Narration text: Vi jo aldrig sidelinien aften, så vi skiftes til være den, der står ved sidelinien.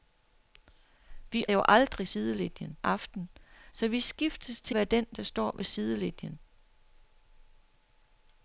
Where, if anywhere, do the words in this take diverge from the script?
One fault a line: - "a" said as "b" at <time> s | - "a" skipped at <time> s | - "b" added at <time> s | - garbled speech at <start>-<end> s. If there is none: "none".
none